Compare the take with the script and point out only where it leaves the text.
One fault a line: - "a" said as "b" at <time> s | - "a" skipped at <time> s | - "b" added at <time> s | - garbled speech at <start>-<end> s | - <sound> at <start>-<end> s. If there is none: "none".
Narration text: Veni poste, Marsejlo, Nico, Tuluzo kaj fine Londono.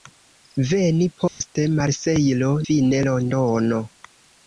- dropout at 1.3-1.4 s
- "Nico Tuluzo kaj" skipped at 2.5 s